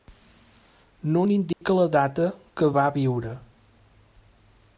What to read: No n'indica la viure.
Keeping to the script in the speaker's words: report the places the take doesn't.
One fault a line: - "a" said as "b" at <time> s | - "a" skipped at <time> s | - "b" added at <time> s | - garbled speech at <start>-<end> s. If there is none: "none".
- "data que va" added at 2.0 s